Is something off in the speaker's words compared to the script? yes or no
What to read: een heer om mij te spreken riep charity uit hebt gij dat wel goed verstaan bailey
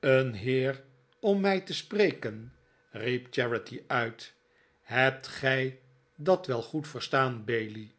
no